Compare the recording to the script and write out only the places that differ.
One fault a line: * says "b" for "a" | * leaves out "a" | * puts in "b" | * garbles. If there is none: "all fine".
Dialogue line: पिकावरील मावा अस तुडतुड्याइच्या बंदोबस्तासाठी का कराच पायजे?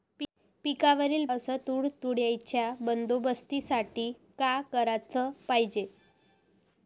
* leaves out "मावा"